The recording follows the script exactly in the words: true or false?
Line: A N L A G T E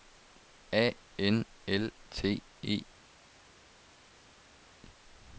false